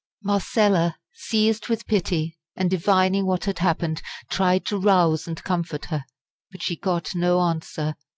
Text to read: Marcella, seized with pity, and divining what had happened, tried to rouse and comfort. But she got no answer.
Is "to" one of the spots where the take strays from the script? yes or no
no